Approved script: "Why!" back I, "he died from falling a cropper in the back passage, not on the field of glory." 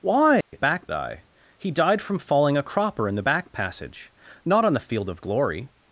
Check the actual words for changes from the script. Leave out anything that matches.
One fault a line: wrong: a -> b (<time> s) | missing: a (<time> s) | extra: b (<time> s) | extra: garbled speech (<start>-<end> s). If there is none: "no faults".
no faults